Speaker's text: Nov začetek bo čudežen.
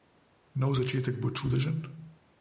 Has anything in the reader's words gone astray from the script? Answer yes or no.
no